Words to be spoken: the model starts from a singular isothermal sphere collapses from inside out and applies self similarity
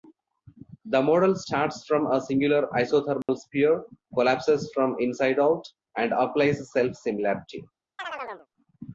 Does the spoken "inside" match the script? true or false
true